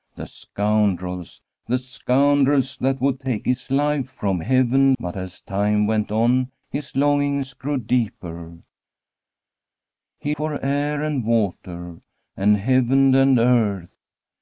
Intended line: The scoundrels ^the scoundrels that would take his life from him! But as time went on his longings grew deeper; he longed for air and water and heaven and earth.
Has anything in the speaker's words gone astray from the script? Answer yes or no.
yes